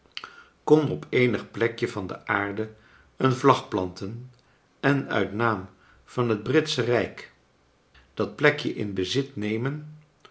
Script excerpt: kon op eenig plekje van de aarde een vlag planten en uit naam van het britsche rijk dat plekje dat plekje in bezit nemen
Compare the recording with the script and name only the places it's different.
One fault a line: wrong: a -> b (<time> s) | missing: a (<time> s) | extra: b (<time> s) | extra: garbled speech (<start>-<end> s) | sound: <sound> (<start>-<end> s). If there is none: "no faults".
missing: dat plekje (8.7 s)